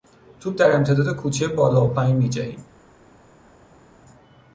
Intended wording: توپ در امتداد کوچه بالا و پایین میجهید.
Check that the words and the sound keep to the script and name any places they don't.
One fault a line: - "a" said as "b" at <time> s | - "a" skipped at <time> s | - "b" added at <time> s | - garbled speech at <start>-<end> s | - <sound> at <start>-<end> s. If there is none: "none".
none